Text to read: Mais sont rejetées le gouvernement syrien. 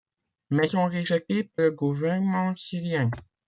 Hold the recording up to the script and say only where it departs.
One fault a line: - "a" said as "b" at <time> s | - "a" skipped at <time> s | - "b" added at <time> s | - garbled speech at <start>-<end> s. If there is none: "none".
none